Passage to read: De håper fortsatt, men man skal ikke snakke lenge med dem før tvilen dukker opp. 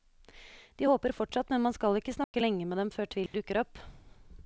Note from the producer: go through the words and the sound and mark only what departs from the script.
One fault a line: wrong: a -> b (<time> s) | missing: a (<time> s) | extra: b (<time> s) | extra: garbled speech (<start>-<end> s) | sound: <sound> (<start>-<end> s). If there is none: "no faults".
sound: dropout (2.2-2.3 s)
sound: dropout (3.3-3.3 s)